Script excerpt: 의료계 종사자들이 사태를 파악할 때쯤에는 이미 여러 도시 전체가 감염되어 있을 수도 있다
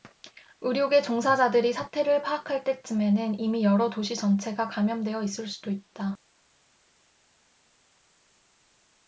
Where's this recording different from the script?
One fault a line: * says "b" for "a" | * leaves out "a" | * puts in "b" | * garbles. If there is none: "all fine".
all fine